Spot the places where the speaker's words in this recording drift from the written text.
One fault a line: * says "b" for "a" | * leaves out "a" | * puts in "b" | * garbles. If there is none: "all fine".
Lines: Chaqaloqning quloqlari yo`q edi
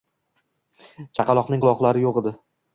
all fine